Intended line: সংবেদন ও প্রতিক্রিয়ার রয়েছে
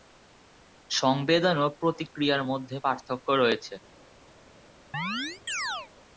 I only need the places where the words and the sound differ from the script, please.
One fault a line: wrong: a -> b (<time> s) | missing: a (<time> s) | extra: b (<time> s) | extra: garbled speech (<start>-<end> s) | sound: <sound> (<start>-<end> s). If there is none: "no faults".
extra: মধ্যে পার্থক্য (2.4 s)
sound: chirp (4.9-5.9 s)